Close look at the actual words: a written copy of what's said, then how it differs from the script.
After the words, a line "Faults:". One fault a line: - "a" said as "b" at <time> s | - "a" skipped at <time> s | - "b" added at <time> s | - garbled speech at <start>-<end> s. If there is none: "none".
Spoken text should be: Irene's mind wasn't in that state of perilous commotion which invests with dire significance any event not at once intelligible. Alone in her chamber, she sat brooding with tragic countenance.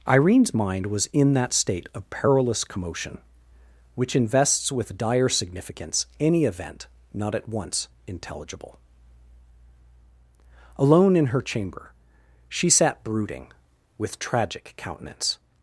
Irene's mind was in that state of perilous commotion which invests with dire significance any event not at once intelligible. Alone in her chamber, she sat brooding with tragic countenance.
Faults:
- "wasn't" said as "was" at 0.9 s